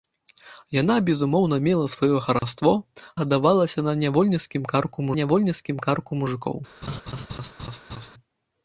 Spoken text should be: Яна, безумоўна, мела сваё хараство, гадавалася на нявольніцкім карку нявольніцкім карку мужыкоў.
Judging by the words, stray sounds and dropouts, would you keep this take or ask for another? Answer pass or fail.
fail